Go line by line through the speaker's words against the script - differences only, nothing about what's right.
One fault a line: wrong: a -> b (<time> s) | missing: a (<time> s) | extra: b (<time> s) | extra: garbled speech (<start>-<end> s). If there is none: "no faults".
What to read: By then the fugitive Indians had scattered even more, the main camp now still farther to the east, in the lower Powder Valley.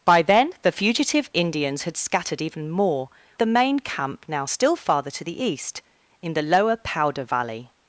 no faults